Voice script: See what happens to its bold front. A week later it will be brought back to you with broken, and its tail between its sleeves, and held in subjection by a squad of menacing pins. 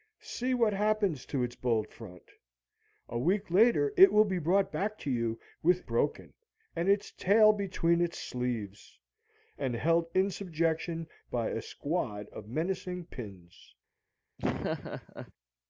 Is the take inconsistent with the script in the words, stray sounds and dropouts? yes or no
yes